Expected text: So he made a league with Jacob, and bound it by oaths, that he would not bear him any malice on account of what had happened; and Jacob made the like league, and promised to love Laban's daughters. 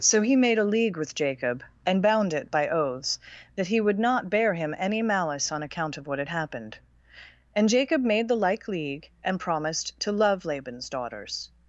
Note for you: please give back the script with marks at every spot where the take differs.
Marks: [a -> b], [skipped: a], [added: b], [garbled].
So he made a league with Jacob, and bound it by oaths, that he would not bear him any malice on account of what had happened; and Jacob made the like league, and promised to love Laban's daughters.